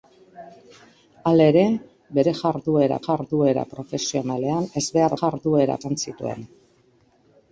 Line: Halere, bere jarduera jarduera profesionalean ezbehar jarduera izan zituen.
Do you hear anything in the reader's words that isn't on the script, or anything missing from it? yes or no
no